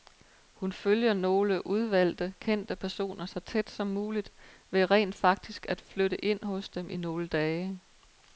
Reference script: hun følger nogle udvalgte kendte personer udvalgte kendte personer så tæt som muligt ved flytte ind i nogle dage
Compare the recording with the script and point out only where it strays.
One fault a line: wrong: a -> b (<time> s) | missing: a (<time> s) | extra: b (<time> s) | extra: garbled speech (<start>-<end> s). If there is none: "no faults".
missing: udvalgte kendte personer (3.2 s)
extra: rent faktisk at (4.9 s)
extra: hos dem (6.4 s)